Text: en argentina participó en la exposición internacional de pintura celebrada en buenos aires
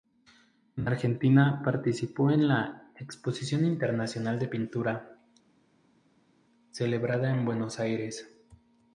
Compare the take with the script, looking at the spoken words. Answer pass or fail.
pass